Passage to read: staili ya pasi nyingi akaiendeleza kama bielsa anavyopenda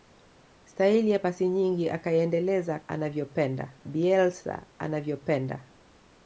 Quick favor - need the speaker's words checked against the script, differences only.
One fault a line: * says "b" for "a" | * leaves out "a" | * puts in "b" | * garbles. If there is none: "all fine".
* says "anavyopenda" for "kama"